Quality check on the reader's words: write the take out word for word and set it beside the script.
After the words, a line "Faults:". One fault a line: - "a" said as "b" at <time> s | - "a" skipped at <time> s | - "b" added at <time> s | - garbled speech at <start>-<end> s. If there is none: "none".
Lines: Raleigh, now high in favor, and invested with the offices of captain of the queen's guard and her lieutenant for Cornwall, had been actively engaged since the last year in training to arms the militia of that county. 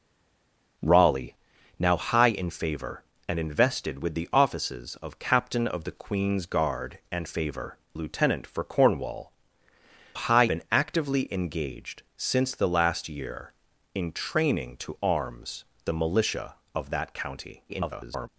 Raleigh, now high in favor, and invested with the offices of captain of the queen's guard and favor lieutenant for Cornwall, high been actively engaged since the last year in training to arms the militia of that county. [garbled]
Faults:
- "her" said as "favor" at 7.2 s
- "had" said as "high" at 10.1 s
- garbled speech at 17.7-18.3 s